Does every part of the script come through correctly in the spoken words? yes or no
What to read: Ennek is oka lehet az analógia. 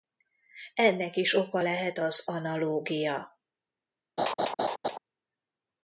yes